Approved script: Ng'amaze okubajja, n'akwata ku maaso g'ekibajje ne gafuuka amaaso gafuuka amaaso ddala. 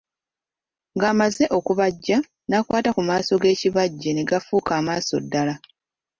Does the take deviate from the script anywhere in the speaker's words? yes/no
yes